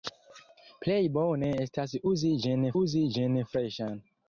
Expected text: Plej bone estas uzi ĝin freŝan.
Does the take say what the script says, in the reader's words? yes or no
no